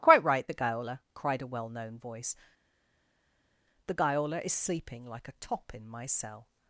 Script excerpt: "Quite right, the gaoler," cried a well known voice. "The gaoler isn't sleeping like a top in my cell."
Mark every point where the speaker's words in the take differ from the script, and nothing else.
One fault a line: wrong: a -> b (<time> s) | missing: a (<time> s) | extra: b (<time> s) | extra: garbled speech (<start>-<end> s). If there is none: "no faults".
wrong: isn't -> is (4.4 s)